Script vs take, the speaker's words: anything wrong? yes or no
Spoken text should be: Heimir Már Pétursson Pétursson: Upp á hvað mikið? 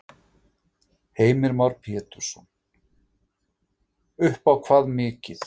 yes